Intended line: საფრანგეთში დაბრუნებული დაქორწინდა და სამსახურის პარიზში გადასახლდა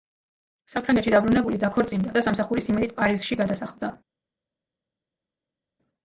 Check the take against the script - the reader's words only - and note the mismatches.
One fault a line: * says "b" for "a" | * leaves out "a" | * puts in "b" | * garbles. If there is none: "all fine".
* puts in "იმედით"